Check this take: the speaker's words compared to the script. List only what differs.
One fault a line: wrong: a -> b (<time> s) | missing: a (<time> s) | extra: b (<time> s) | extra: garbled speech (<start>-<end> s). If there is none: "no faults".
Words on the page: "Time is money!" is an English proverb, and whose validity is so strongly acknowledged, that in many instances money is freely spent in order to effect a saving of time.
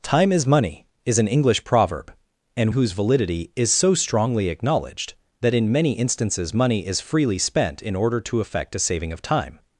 no faults